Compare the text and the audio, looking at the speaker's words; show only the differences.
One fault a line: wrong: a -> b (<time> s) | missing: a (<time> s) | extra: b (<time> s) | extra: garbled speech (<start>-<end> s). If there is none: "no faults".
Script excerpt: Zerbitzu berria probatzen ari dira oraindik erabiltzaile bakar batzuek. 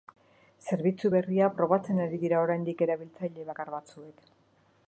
no faults